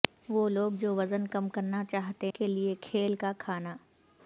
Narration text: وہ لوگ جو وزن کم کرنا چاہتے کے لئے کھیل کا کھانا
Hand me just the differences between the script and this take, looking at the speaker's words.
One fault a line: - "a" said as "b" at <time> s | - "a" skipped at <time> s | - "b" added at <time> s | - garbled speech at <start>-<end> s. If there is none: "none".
none